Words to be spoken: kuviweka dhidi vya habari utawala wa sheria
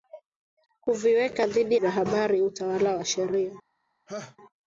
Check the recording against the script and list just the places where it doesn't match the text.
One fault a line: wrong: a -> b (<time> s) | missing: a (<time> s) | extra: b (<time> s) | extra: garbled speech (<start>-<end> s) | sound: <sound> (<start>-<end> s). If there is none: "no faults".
sound: laugh (4.1-4.4 s)